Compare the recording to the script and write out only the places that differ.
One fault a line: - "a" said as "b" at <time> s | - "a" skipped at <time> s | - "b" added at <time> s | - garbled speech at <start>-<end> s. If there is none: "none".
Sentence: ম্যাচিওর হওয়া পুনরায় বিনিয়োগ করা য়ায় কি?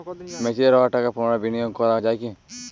- "টাকা" added at 0.9 s